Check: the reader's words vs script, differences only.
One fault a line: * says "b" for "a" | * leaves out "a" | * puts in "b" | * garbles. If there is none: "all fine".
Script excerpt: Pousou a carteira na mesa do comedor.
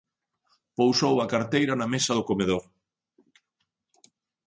all fine